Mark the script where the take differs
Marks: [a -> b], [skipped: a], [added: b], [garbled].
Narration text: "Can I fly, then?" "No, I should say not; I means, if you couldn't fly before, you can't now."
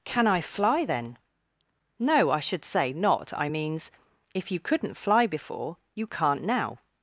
"Can I fly, then?" "No, I should say not; I means, if you couldn't fly before, you can't now."